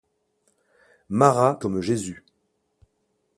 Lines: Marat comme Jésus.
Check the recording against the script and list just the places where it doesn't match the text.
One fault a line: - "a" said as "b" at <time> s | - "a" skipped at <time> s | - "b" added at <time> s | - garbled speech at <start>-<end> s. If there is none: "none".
none